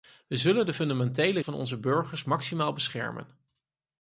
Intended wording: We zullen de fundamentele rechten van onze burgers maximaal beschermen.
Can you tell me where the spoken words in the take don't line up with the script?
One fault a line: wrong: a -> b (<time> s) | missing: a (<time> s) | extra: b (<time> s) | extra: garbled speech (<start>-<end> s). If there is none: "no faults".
missing: rechten (1.4 s)